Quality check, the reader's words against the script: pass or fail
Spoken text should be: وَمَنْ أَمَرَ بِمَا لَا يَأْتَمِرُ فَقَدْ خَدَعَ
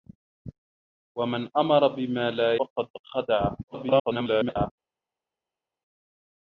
fail